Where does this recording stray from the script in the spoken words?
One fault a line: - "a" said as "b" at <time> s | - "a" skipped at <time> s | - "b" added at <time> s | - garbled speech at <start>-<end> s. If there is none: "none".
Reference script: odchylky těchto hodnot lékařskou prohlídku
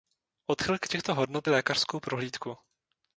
none